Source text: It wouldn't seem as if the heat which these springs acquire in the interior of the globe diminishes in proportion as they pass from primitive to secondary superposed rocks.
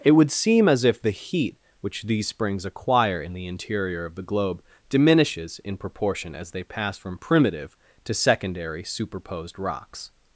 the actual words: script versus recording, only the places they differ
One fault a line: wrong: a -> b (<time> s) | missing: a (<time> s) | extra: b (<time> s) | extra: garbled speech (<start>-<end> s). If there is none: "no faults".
wrong: wouldn't -> would (0.1 s)